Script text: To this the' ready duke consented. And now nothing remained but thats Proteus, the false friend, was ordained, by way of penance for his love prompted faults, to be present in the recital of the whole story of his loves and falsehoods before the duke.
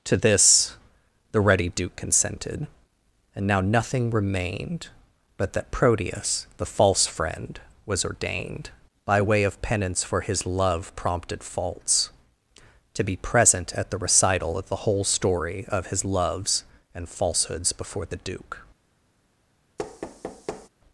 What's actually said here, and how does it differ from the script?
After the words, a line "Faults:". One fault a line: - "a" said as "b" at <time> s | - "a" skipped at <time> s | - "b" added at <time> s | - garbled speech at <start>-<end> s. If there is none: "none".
To this the' ready duke consented. And now nothing remained but that Proteus, the false friend, was ordained, by way of penance for his love prompted faults, to be present at the recital of the whole story of his loves and falsehoods before the duke.
Faults:
- "thats" said as "that" at 5.5 s
- "in" said as "at" at 13.7 s